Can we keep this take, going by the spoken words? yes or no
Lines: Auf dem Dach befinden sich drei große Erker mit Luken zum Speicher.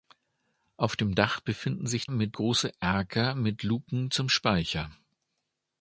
no